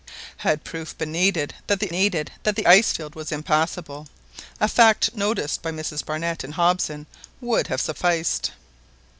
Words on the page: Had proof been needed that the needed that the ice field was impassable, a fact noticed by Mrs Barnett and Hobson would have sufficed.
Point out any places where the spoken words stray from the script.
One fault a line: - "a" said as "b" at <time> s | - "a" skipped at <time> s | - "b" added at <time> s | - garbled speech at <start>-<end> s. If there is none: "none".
none